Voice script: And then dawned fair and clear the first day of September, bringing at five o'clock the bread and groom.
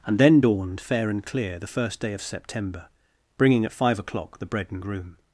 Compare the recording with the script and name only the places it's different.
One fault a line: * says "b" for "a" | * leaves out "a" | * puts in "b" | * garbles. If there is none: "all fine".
all fine